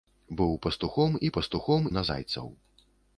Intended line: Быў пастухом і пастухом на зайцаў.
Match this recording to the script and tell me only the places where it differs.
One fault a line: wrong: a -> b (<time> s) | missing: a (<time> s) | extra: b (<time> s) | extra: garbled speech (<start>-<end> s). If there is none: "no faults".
no faults